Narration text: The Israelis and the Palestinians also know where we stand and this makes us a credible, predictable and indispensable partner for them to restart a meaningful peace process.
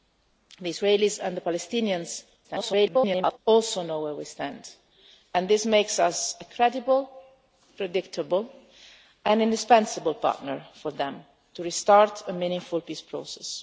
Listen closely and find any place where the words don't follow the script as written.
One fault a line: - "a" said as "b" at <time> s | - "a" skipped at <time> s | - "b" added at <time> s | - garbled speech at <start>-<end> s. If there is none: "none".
- garbled speech at 2.4-3.4 s